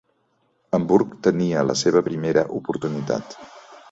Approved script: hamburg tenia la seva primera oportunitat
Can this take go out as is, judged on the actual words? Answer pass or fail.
pass